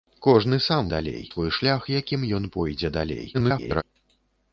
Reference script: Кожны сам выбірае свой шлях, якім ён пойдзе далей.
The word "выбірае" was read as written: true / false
false